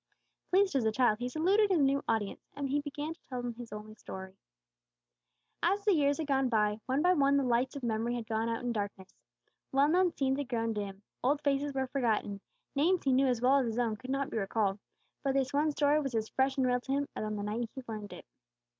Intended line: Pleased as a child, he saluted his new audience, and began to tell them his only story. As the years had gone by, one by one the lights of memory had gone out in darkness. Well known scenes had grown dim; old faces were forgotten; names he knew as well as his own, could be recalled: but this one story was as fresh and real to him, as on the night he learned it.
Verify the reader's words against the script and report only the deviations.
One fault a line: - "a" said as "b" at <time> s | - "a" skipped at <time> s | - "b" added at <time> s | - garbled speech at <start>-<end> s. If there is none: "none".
- "not" added at 14.1 s